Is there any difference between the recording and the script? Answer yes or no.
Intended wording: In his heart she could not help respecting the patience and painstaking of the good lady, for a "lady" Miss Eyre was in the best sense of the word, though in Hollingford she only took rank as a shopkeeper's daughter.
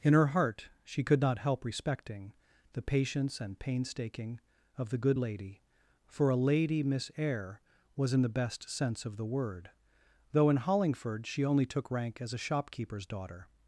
yes